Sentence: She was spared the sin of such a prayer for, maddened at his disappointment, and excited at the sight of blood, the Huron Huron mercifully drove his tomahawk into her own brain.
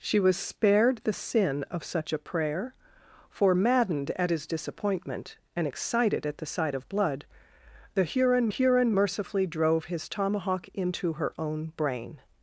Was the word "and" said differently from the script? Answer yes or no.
no